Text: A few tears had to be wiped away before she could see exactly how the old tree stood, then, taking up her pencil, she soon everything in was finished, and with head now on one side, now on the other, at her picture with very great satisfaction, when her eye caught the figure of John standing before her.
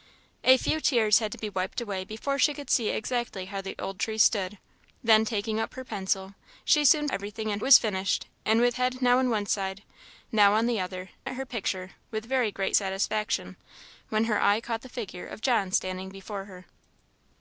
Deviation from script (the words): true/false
false